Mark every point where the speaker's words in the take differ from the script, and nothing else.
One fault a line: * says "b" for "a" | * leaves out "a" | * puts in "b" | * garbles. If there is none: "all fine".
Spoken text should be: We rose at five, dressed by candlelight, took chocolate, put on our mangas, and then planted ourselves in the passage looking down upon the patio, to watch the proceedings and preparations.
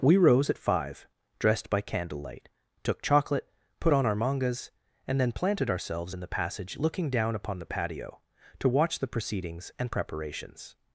all fine